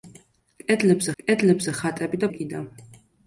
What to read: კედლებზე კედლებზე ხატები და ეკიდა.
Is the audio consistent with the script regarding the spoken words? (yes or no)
yes